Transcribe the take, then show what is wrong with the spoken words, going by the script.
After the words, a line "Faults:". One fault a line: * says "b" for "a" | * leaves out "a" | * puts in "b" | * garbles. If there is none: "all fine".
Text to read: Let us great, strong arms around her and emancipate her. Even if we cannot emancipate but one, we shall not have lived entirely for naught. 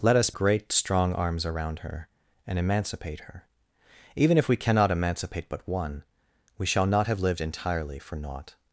Let us great, strong arms around her and emancipate her. Even if we cannot emancipate but one, we shall not have lived entirely for naught.
Faults:
all fine